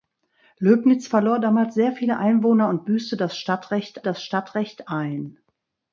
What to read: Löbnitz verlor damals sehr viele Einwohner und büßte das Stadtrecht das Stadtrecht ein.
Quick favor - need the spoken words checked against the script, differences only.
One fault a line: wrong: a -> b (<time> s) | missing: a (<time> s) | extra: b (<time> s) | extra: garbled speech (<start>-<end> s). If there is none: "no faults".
no faults